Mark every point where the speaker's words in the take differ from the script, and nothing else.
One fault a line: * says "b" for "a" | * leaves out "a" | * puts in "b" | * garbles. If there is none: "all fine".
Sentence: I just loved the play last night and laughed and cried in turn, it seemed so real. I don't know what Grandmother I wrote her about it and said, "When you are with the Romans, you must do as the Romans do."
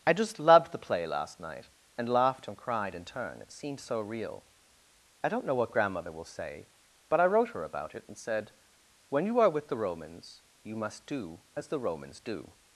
* puts in "will say but"